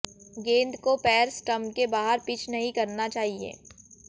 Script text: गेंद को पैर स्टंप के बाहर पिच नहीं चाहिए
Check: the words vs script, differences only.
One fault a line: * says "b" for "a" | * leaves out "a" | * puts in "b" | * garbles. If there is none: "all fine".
* puts in "करना"